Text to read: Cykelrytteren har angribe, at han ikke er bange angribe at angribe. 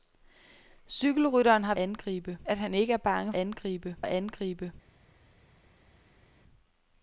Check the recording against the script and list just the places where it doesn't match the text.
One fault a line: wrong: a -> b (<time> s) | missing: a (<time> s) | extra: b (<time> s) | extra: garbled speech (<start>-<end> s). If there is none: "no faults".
no faults